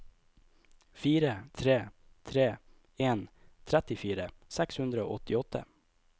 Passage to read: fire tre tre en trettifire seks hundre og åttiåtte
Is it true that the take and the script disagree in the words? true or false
false